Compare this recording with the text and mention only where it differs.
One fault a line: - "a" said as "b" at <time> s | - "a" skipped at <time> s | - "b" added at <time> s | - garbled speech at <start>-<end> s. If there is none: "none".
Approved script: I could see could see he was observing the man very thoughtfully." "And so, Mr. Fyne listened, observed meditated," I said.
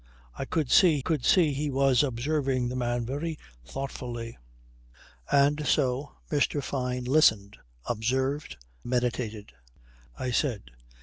none